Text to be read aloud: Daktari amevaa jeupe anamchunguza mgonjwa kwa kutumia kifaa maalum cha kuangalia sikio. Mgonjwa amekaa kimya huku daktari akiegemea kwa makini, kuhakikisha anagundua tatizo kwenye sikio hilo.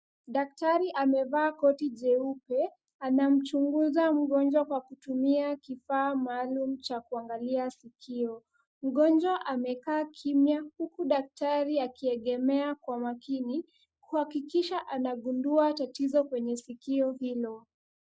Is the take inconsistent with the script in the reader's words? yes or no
yes